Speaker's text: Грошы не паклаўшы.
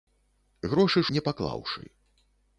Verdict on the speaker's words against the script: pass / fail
pass